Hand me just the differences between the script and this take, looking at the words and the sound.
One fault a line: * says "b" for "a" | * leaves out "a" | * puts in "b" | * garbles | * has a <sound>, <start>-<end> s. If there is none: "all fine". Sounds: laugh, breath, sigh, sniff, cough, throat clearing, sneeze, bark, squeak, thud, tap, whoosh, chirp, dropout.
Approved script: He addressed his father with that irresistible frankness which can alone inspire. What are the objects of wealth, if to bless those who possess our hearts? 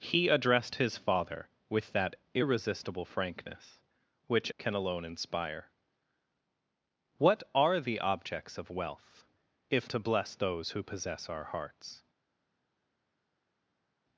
all fine